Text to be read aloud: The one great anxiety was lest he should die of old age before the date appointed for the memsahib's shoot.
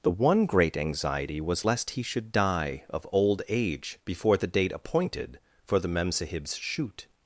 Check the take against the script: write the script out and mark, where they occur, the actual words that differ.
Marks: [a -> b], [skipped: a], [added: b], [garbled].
The one great anxiety was lest he should die of old age before the date appointed for the memsahib's shoot.